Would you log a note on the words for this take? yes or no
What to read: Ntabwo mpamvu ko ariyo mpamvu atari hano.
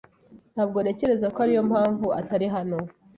yes